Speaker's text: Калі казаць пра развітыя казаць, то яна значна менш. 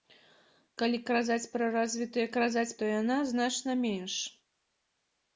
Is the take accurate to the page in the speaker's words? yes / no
yes